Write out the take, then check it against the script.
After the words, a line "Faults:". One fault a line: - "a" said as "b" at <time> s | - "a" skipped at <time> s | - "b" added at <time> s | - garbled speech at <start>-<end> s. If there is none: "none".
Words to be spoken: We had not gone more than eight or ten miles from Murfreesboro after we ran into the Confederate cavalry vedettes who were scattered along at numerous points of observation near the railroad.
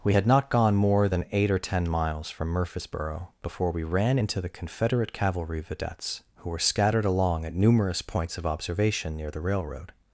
We had not gone more than eight or ten miles from Murfreesboro before we ran into the Confederate cavalry vedettes who were scattered along at numerous points of observation near the railroad.
Faults:
- "after" said as "before" at 3.4 s